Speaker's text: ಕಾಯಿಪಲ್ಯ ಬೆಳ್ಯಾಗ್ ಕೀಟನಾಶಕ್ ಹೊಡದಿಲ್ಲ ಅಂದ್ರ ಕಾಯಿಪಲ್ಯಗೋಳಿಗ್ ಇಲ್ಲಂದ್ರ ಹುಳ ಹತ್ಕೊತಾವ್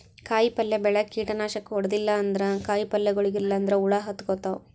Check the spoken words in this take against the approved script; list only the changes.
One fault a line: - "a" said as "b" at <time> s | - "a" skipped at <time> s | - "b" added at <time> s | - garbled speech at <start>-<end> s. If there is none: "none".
none